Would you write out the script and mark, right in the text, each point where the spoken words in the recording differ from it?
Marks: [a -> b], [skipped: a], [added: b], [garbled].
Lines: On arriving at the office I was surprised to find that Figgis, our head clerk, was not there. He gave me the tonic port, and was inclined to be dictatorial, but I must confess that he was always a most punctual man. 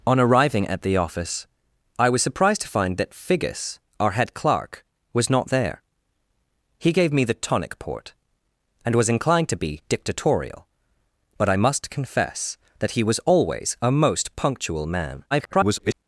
On arriving at the office I was surprised to find that Figgis, our head clerk, was not there. He gave me the tonic port, and was inclined to be dictatorial, but I must confess that he was always a most punctual man. [garbled]